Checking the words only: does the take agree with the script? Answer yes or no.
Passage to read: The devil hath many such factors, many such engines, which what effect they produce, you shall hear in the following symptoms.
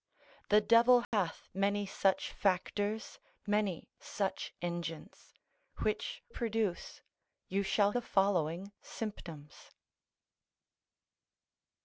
no